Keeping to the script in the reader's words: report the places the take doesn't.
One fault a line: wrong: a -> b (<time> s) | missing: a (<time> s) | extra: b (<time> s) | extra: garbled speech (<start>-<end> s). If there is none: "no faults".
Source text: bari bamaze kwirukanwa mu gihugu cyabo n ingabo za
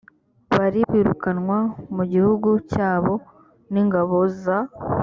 missing: bamaze (0.8 s)